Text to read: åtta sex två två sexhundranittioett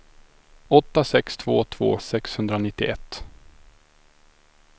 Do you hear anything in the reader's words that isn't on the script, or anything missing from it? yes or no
no